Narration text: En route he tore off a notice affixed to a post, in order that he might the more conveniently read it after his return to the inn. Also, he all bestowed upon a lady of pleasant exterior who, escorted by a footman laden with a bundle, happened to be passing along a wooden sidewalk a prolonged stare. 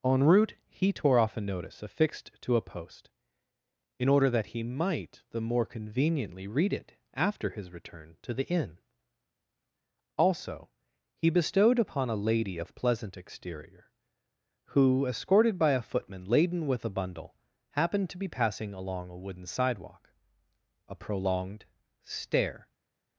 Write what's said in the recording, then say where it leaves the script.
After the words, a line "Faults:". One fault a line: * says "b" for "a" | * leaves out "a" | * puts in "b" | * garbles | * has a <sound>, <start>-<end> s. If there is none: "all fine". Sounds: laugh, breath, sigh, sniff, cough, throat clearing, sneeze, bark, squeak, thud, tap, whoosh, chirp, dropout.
En route he tore off a notice affixed to a post, in order that he might the more conveniently read it after his return to the inn. Also, he bestowed upon a lady of pleasant exterior who, escorted by a footman laden with a bundle, happened to be passing along a wooden sidewalk a prolonged stare.
Faults:
* leaves out "all"